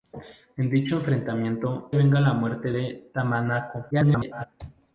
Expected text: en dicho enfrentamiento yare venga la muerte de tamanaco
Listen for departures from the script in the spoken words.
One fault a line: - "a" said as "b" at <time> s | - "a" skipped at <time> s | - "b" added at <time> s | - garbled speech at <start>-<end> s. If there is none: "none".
- "yare" skipped at 1.9 s
- garbled speech at 3.9-4.4 s